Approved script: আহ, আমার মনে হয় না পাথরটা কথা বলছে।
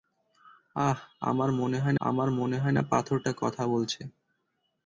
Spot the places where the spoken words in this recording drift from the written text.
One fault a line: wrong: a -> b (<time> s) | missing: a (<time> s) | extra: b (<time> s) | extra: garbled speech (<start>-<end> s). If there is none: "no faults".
extra: আমার মনে হয় (2.0 s)